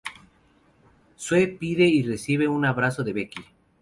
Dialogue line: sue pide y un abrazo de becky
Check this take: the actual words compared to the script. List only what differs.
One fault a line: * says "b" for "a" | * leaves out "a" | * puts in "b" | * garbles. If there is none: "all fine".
* puts in "recibe"